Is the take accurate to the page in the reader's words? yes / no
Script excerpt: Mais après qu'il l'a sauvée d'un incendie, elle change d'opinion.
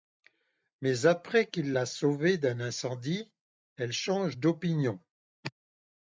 yes